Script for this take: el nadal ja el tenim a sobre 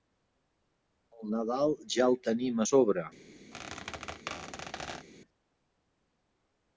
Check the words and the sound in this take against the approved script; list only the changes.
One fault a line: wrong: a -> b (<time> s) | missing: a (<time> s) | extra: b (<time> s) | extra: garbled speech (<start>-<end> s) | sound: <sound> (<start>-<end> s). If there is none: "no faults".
sound: squeak (3.5-5.1 s)